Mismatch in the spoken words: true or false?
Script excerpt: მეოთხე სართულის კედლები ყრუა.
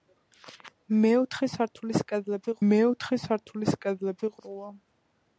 true